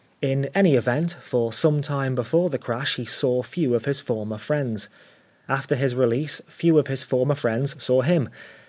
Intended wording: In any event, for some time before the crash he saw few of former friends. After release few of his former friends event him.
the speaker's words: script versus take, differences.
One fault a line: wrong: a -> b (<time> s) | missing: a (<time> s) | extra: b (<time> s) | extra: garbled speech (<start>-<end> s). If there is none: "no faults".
extra: his (3.8 s)
extra: his (5.7 s)
wrong: event -> saw (7.8 s)